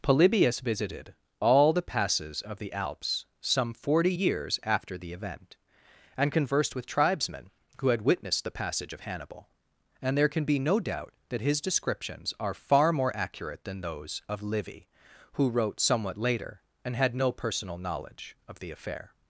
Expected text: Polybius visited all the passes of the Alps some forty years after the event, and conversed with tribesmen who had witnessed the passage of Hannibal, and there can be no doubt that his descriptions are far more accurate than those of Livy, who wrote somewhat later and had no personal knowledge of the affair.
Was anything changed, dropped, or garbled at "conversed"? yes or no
no